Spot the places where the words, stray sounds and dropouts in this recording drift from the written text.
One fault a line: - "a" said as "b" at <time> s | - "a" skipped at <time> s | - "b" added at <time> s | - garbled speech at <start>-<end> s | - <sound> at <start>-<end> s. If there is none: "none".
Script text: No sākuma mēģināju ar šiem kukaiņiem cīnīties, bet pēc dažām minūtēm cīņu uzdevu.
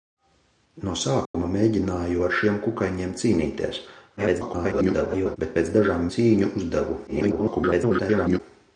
- dropout at 1.3-1.3 s
- garbled speech at 4.2-5.4 s
- "minūtēm" skipped at 6.1 s
- garbled speech at 7.1-8.4 s